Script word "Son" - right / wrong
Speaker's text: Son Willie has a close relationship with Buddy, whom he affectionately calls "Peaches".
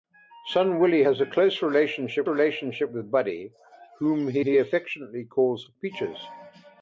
right